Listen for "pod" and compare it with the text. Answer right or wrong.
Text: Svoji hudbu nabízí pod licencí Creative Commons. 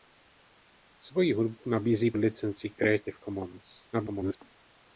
wrong